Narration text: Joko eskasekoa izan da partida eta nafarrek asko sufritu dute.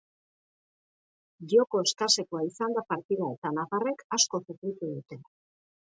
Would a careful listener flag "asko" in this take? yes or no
no